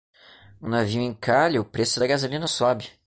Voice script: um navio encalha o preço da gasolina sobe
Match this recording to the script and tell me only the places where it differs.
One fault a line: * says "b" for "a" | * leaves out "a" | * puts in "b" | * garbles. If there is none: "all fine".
all fine